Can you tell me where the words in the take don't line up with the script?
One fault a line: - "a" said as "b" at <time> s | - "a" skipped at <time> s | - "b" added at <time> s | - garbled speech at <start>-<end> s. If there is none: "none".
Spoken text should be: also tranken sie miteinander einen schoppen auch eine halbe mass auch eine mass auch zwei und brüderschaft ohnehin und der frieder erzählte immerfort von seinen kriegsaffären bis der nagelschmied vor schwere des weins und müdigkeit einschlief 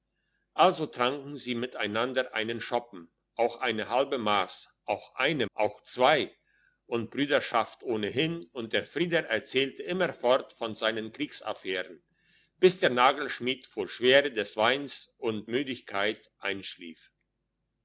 - "mass" skipped at 5.5 s